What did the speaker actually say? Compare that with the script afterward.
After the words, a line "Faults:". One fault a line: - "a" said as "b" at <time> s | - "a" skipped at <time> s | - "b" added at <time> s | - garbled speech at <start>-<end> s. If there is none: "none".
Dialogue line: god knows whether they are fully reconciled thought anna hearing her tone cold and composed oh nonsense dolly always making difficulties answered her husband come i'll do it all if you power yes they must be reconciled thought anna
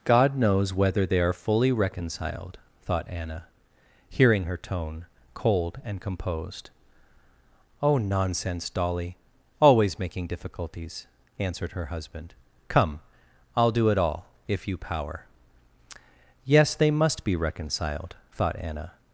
god knows whether they are fully reconciled thought anna hearing her tone cold and composed oh nonsense dolly always making difficulties answered her husband come i'll do it all if you power yes they must be reconciled thought anna
Faults:
none